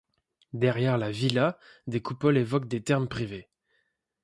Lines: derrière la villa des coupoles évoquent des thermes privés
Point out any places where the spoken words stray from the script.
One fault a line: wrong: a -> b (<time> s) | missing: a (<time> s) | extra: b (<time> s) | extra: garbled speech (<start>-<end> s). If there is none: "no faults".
no faults